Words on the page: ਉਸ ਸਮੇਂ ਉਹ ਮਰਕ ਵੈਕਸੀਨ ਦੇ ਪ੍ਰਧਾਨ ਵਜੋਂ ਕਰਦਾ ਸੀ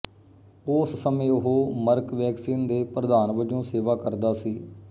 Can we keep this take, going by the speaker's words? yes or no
no